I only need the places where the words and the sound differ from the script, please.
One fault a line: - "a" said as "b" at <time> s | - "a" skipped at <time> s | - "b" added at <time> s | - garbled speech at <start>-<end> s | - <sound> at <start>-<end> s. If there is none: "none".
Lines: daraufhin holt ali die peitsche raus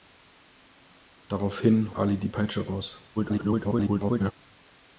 - "holt" skipped at 1.9 s
- garbled speech at 3.2-4.3 s